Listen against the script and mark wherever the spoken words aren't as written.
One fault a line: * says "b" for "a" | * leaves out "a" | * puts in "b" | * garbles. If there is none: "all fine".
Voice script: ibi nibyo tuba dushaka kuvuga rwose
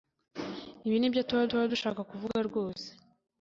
* puts in "tuba"